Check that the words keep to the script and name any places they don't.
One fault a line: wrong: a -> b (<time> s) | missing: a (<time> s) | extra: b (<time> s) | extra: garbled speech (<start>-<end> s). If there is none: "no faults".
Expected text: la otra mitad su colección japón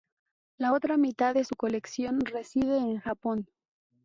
extra: de (1.3 s)
extra: reside en (2.2 s)